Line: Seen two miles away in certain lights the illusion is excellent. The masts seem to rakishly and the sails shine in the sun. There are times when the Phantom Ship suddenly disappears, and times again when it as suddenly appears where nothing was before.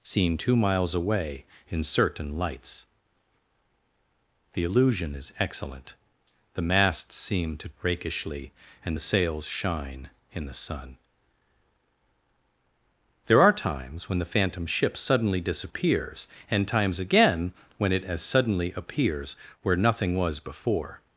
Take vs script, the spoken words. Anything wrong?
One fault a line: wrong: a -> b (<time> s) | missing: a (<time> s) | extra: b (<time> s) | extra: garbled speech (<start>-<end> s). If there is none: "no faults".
no faults